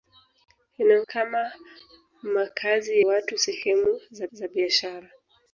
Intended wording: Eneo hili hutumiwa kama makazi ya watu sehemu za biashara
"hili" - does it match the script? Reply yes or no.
no